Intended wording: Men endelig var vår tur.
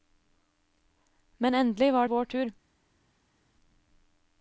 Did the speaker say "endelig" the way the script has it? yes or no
yes